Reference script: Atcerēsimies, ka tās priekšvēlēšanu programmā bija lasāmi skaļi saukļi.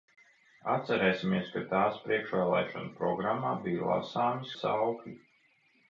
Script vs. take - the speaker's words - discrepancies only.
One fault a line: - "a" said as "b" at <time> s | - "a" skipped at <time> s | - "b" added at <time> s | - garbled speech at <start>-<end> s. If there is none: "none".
- "skaļi" skipped at 4.5 s